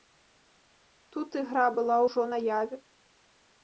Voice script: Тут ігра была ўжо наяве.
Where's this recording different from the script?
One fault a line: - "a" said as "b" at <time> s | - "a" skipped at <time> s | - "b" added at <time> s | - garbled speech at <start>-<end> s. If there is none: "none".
none